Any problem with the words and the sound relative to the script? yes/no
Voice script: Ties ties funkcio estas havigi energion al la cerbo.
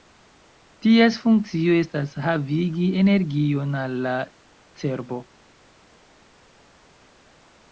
yes